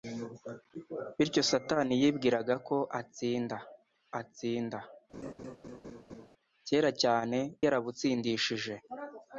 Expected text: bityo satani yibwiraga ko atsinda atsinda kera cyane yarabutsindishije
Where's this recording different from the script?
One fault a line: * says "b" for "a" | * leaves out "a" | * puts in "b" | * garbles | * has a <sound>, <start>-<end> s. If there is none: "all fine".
* has a laugh, 5.1-6.3 s